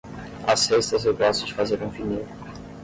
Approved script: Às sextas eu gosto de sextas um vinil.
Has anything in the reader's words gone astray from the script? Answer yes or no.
yes